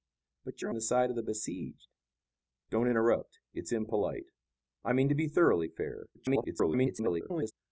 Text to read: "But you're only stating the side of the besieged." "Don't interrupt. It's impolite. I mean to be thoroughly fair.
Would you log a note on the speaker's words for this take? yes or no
yes